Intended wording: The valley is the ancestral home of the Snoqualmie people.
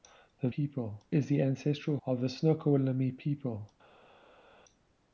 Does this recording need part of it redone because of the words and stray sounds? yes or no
yes